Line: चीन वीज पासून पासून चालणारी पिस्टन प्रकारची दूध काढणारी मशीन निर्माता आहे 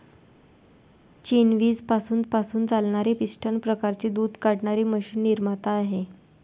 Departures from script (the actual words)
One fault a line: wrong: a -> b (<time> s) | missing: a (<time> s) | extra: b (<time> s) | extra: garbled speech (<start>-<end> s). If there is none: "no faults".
no faults